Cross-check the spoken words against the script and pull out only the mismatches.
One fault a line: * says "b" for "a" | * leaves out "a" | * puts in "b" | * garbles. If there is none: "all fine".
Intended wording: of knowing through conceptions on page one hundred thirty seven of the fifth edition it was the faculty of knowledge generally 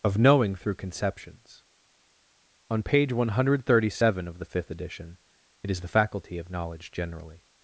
* says "is" for "was"